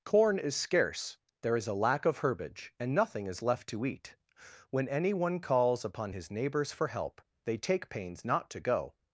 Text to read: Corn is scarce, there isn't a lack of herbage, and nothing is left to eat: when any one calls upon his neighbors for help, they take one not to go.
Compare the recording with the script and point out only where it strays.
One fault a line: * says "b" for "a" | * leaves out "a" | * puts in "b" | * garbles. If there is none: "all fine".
* says "is" for "isn't"
* says "pains" for "one"